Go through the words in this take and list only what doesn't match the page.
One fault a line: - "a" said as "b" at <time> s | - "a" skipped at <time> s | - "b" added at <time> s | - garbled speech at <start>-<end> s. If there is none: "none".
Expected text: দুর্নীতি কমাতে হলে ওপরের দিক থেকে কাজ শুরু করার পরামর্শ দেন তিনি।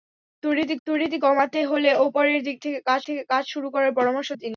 - "দুর্নীতি" added at 0.9 s
- "থেকে কাজ" added at 3.1 s
- "দেন" skipped at 4.3 s